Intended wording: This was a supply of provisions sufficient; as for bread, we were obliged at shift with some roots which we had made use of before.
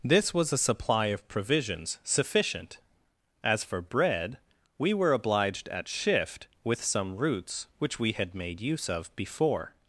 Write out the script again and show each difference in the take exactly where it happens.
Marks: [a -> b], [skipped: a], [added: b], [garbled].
This was a supply of provisions sufficient; as for bread, we were obliged at shift with some roots which we had made use of before.